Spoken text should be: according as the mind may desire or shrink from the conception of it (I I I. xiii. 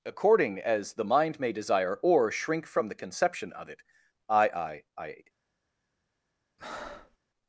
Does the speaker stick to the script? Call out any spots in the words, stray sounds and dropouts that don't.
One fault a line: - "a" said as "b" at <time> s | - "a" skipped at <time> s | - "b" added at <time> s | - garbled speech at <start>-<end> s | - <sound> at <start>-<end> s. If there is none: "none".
- "xiii" skipped at 5.2 s
- breath at 6.6-7.2 s